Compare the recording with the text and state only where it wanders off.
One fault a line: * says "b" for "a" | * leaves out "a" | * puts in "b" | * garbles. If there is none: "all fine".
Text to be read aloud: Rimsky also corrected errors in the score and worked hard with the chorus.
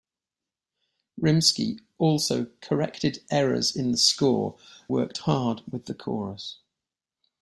* leaves out "and"